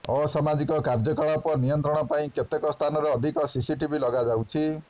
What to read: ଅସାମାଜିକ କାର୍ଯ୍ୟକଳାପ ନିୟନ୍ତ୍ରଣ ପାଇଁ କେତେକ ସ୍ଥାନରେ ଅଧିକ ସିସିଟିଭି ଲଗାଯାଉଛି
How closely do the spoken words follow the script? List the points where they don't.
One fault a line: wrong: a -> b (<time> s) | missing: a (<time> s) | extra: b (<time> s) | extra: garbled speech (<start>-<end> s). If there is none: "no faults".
no faults